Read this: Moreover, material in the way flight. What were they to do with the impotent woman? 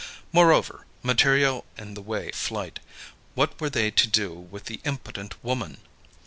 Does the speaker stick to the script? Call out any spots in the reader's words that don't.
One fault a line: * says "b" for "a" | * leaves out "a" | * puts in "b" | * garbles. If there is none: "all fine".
all fine